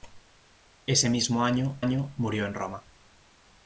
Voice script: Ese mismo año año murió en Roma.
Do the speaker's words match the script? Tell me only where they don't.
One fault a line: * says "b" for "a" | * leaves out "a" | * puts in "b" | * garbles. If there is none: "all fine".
all fine